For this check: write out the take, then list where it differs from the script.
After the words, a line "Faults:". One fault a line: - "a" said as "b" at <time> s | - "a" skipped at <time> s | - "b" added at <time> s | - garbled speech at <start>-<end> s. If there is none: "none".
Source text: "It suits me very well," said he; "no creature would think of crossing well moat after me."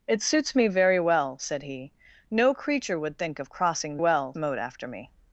"It suits me very well," said he; "no creature would think of crossing well moat after me."
Faults:
none